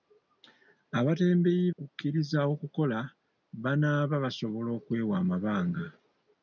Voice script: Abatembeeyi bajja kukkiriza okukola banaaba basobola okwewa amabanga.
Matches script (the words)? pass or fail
fail